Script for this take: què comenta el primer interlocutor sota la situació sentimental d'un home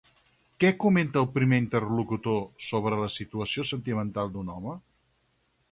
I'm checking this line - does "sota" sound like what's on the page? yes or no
no